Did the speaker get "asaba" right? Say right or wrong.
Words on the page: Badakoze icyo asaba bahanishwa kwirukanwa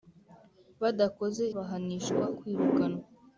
wrong